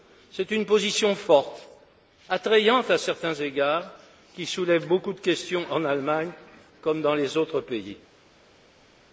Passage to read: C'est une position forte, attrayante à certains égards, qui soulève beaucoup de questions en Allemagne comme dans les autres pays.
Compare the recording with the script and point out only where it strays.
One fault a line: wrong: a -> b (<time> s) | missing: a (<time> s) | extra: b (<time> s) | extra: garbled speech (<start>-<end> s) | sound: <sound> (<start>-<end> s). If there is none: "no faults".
no faults